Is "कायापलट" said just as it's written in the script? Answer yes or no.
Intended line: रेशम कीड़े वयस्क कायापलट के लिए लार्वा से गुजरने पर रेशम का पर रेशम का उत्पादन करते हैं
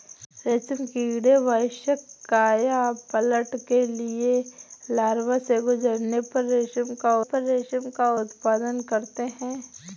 yes